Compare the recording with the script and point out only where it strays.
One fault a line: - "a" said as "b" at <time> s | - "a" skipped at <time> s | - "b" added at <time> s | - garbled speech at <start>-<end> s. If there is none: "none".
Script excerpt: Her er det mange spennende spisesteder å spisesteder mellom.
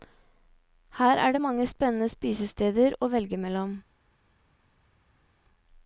- "spisesteder" said as "velge" at 3.1 s